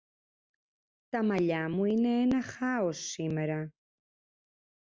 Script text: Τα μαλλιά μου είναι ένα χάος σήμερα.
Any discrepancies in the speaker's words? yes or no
no